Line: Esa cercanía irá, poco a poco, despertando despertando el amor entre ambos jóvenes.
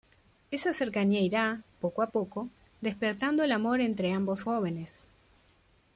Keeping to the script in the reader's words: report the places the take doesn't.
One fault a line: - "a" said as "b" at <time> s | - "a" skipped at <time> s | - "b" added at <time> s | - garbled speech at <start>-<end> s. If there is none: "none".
- "despertando" skipped at 3.4 s